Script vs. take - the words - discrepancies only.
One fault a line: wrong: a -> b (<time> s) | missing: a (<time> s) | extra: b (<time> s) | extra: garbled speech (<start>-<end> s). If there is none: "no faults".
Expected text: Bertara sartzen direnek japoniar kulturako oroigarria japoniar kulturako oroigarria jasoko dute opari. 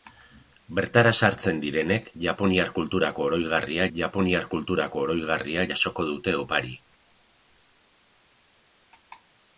no faults